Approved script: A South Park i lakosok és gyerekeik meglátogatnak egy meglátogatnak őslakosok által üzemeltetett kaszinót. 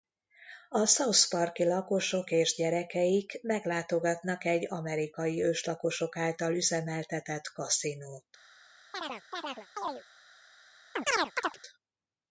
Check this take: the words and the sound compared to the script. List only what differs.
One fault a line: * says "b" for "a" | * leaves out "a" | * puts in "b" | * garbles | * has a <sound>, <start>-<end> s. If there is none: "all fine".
* says "amerikai" for "meglátogatnak"
* has a chirp, 8.9-10.0 s
* has a chirp, 11.0-11.6 s